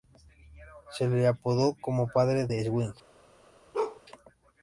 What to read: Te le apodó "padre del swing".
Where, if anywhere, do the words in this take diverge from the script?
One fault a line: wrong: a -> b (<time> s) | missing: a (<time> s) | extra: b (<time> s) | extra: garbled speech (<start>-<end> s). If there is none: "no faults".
wrong: Te -> Se (0.9 s)
extra: como (1.8 s)